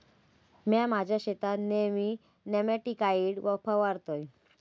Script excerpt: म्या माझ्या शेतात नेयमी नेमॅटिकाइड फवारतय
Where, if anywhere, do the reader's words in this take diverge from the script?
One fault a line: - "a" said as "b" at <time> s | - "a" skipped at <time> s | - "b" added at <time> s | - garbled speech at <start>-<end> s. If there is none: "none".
none